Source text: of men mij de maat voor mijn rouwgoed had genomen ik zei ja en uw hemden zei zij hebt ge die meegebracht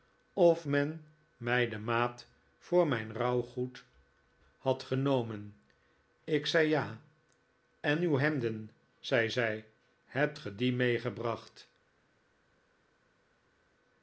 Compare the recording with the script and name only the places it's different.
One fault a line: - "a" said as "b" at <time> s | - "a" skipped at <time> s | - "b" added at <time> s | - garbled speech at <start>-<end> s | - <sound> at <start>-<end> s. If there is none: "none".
none